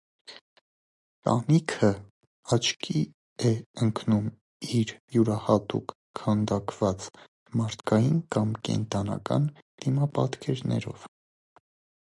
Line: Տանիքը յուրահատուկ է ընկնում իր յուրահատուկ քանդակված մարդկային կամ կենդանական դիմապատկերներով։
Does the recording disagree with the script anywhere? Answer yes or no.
yes